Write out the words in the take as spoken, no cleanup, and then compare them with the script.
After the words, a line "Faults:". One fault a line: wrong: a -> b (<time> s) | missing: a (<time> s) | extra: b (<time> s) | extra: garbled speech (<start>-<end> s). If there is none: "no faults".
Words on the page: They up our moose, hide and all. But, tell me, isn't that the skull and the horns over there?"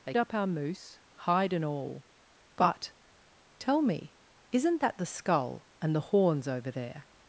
They up our moose, hide and all. But, tell me, isn't that the skull and the horns over there?"
Faults:
no faults